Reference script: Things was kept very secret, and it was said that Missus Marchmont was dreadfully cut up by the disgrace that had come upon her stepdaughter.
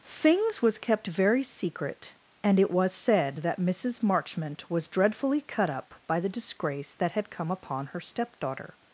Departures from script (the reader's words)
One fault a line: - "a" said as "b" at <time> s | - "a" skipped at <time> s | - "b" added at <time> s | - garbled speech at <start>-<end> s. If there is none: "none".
none